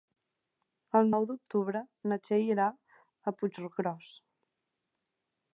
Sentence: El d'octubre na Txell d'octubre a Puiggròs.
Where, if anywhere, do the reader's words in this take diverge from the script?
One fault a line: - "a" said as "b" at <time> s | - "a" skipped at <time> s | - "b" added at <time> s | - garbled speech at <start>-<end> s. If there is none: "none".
- "nou" added at 1.1 s
- "d'octubre" said as "irà" at 2.5 s